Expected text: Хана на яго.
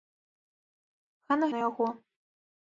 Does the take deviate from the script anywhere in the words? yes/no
no